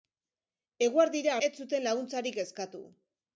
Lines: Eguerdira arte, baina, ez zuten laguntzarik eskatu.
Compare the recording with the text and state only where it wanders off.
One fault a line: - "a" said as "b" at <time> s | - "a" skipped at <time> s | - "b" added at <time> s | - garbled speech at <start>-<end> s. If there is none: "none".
- "arte baina" skipped at 1.4 s